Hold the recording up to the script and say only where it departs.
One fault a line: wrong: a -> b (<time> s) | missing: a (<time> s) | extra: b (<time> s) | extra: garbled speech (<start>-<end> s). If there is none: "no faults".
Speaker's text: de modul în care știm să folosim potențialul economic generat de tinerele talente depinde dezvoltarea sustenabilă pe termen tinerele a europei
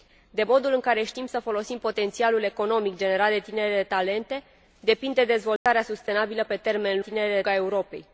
no faults